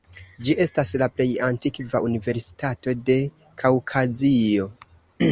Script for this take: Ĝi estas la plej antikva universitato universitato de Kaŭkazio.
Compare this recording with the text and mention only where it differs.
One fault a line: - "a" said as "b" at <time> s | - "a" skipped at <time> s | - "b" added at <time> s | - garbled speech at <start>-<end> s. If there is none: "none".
- "universitato" skipped at 3.0 s